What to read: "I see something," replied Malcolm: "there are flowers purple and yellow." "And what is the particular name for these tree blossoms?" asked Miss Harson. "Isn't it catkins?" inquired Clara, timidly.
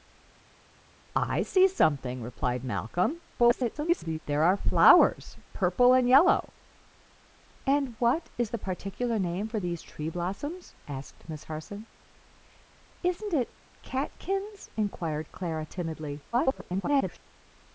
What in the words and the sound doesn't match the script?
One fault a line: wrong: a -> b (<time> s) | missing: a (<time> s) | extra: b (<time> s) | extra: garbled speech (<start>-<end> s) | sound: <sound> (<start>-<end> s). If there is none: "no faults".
extra: garbled speech (3.4-4.2 s)
extra: garbled speech (16.3-17.2 s)